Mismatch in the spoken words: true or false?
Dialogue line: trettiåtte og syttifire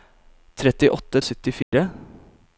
false